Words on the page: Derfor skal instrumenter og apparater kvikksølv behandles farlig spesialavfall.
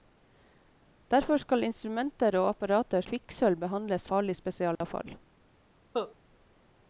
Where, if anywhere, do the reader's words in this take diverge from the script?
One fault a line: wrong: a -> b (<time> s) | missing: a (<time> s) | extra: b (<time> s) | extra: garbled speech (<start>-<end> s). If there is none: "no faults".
no faults